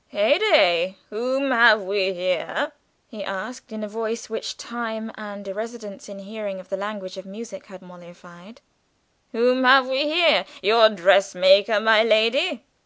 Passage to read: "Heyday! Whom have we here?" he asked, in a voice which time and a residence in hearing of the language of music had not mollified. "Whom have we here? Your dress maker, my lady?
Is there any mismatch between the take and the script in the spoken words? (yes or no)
yes